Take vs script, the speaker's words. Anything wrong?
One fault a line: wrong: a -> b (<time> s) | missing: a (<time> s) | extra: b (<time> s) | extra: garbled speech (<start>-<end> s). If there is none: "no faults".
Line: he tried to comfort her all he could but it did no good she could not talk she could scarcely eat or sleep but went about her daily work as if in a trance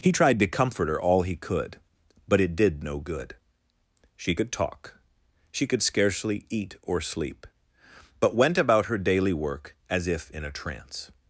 missing: not (4.5 s)